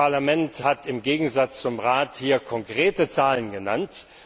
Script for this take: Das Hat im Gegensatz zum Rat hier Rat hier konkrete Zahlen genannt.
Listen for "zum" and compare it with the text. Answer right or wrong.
right